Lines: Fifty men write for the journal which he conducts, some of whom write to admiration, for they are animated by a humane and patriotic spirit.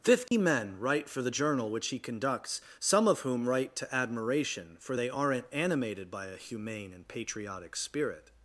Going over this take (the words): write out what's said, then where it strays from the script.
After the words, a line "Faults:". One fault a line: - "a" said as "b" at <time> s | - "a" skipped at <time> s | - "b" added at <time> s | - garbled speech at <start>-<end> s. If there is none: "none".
Fifty men write for the journal which he conducts, some of whom write to admiration, for they aren't animated by a humane and patriotic spirit.
Faults:
- "are" said as "aren't" at 5.1 s